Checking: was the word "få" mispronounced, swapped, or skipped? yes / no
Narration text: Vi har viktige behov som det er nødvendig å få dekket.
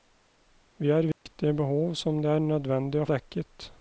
yes